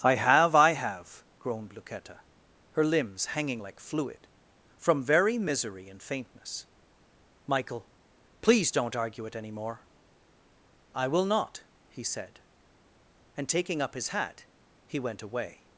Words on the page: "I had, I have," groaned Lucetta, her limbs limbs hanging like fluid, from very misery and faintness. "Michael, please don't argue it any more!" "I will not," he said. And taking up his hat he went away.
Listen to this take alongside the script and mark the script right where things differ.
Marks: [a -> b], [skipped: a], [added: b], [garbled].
"I [had, -> have] I have," groaned Lucetta, her limbs [skipped: limbs] hanging like fluid, from very misery and faintness. "Michael, please don't argue it any more!" "I will not," he said. And taking up his hat he went away.